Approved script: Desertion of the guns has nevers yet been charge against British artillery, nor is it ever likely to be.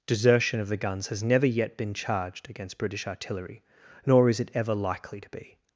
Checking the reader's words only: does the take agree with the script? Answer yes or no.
no